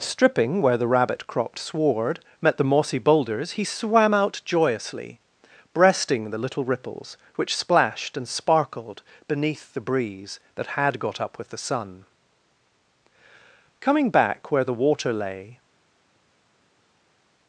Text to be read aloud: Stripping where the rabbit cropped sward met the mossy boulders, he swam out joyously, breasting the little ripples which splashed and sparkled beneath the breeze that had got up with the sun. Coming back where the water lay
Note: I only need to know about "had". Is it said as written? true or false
true